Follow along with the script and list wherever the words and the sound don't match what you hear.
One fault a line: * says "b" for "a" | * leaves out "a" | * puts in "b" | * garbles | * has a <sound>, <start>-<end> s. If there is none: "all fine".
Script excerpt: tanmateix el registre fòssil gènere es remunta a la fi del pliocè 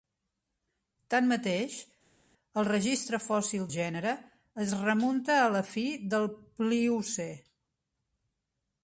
all fine